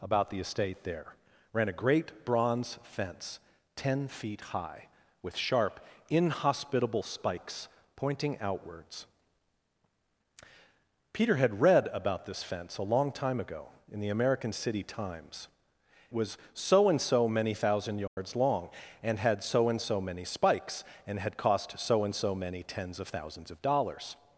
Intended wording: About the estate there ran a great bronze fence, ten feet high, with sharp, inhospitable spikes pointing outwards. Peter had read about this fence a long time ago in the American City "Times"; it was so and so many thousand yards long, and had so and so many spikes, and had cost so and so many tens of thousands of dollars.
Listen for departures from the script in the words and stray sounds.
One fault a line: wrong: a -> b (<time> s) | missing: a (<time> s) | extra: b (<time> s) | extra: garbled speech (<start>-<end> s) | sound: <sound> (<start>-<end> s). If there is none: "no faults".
missing: it (15.5 s)
sound: dropout (18.1-18.2 s)